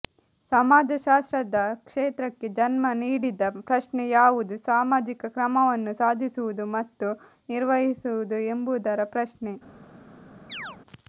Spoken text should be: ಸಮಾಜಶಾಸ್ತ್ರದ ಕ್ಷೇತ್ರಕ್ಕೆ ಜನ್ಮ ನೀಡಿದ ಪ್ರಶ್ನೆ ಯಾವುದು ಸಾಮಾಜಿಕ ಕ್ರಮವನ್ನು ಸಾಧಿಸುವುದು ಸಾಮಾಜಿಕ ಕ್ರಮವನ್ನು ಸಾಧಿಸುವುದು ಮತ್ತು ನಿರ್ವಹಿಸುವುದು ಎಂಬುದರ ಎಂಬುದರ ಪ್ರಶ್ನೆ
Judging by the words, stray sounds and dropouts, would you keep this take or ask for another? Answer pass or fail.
fail